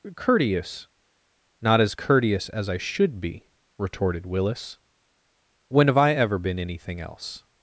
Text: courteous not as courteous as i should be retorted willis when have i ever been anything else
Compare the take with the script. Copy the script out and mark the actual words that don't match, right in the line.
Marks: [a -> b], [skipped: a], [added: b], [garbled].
courteous not as courteous as i should be retorted willis when have i ever been anything else